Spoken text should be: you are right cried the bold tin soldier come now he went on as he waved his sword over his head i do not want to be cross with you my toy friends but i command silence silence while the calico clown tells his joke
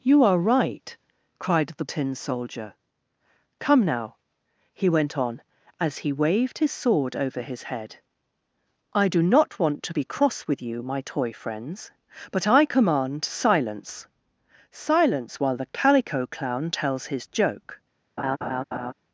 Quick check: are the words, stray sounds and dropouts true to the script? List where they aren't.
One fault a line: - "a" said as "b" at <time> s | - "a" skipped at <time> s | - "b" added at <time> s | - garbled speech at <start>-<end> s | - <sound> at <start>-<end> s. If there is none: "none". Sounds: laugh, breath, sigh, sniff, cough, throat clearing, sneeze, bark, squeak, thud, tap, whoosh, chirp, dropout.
- "bold" skipped at 1.9 s
- laugh at 18.2-18.9 s